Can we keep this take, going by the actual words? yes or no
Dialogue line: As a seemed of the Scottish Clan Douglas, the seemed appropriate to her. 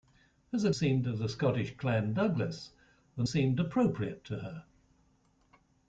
yes